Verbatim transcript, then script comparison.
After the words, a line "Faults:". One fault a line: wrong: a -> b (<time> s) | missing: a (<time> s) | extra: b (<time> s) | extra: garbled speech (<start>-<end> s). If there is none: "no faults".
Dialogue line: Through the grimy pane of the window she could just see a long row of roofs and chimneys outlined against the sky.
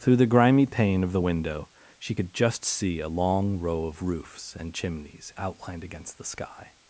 Through the grimy pane of the window she could just see a long row of roofs and chimneys outlined against the sky.
Faults:
no faults